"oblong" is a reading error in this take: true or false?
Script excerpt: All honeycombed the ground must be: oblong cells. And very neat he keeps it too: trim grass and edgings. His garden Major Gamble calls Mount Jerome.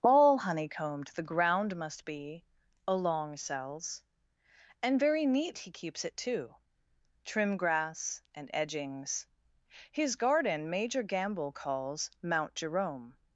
true